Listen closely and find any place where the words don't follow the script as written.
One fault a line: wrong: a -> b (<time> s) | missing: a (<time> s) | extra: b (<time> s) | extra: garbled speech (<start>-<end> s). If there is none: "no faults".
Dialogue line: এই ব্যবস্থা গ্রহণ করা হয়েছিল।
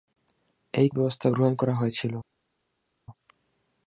no faults